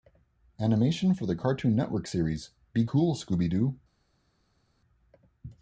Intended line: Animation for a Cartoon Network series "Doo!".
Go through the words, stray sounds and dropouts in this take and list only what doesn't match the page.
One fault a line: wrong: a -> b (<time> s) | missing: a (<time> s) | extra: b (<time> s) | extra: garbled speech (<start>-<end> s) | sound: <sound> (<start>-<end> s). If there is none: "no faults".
wrong: a -> the (1.3 s)
extra: Be Cool Scooby (2.7 s)